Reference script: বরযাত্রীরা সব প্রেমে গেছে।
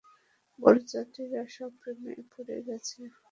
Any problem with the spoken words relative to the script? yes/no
yes